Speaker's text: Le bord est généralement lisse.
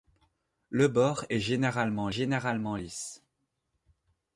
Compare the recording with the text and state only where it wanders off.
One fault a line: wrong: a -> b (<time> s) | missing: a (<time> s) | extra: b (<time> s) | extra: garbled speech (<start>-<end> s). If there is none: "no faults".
extra: généralement (2.1 s)